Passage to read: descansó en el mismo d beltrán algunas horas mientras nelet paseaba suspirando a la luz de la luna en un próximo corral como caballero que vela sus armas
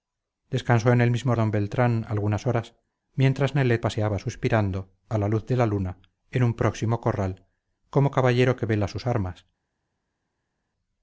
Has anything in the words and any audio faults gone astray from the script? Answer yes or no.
no